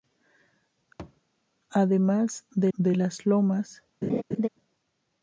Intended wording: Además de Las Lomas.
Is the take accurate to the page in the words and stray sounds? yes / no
no